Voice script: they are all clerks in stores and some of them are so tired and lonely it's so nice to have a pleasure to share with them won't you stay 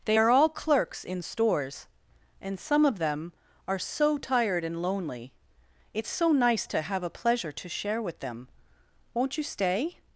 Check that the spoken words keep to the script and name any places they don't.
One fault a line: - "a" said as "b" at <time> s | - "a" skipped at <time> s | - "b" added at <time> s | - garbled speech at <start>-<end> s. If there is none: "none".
none